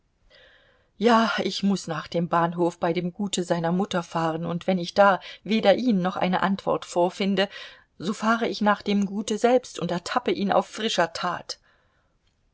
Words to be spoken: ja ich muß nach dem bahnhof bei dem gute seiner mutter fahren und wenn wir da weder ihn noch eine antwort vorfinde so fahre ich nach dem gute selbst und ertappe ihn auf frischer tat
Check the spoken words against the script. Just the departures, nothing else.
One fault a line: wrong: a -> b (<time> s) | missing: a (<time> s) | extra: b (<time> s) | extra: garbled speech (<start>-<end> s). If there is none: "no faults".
wrong: wir -> ich (4.8 s)